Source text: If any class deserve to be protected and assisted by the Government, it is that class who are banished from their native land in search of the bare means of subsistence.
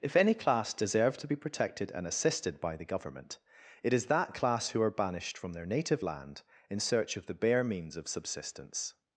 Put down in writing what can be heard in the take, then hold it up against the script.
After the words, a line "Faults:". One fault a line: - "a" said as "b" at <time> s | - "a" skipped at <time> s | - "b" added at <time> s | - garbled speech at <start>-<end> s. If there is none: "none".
If any class deserve to be protected and assisted by the Government, it is that class who are banished from their native land in search of the bare means of subsistence.
Faults:
none